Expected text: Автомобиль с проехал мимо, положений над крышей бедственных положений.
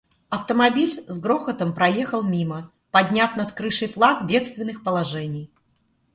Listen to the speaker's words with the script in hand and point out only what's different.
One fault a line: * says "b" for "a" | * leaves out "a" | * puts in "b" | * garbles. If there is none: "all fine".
* puts in "грохотом"
* says "подняв" for "положений"
* puts in "флаг"